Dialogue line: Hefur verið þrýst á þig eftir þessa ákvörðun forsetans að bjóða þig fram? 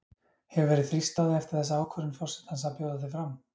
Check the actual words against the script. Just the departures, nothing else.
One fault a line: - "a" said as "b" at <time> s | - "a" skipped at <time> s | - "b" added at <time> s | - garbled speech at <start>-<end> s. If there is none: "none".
none